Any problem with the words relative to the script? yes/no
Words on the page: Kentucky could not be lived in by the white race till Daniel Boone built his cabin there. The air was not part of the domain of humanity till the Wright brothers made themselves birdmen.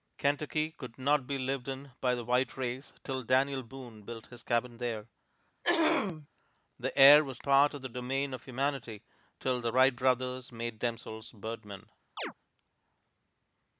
yes